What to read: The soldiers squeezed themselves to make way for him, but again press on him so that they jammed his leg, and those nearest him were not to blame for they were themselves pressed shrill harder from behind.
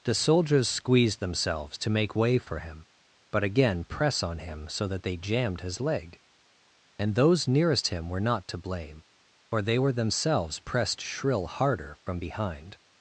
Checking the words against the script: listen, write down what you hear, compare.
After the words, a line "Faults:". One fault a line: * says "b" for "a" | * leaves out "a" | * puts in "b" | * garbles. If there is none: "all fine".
The soldiers squeezed themselves to make way for him, but again press on him so that they jammed his leg, and those nearest him were not to blame for they were themselves pressed shrill harder from behind.
Faults:
all fine